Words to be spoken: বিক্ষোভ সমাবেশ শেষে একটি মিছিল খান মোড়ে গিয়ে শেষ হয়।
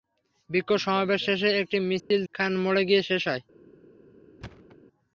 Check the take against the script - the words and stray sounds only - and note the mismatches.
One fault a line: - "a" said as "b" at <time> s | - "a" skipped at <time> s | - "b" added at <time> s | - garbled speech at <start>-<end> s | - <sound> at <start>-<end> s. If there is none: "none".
- dropout at 2.0-2.1 s
- thud at 4.4-4.8 s